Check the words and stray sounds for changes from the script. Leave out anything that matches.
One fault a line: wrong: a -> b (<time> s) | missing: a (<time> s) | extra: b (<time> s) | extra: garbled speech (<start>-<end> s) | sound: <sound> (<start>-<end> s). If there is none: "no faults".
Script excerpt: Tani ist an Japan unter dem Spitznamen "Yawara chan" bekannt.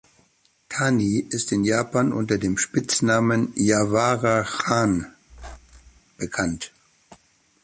wrong: an -> in (1.5 s)
sound: squeak (5.3-6.0 s)